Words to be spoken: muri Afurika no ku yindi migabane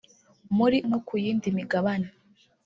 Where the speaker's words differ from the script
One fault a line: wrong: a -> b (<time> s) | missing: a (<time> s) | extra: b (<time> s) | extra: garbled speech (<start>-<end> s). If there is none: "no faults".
missing: Afurika (0.8 s)